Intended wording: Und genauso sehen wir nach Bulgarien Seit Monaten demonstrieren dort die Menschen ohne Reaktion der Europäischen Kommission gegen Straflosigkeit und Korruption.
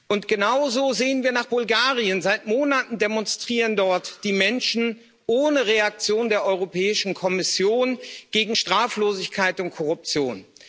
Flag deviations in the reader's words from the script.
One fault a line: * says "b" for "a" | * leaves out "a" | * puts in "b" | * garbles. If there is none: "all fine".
all fine